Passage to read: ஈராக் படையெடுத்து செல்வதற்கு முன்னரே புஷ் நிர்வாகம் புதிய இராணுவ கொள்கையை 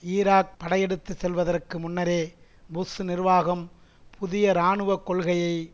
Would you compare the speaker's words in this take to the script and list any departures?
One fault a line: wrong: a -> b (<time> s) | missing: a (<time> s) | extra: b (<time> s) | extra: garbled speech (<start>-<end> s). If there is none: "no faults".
no faults